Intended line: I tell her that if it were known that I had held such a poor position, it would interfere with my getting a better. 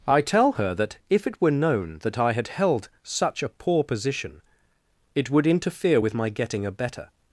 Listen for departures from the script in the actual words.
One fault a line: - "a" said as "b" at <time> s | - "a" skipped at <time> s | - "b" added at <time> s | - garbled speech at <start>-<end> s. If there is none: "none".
none